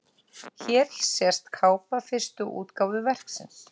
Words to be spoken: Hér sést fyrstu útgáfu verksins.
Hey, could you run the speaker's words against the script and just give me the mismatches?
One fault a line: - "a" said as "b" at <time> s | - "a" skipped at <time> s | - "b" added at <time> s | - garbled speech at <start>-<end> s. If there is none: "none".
- "kápa" added at 1.5 s